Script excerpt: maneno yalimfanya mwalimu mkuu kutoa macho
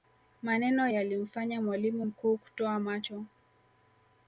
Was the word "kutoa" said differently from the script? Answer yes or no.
no